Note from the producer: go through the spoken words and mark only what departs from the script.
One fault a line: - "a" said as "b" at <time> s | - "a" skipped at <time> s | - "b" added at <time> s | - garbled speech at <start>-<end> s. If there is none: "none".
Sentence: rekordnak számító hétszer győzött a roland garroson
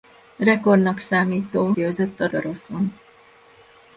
- "hétszer" skipped at 1.7 s
- "roland" skipped at 2.3 s